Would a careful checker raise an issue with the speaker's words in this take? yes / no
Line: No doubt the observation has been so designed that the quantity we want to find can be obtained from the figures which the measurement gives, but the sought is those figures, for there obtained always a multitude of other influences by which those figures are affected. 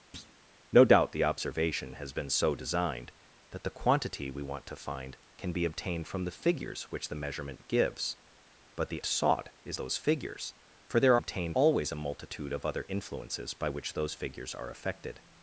no